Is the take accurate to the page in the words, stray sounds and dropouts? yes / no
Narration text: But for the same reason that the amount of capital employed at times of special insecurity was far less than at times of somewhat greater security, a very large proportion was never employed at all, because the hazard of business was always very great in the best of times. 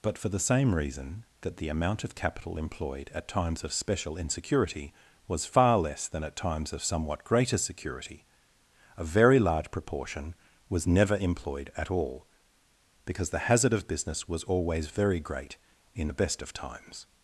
yes